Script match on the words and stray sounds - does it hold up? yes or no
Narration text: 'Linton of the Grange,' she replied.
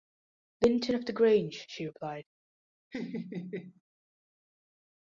no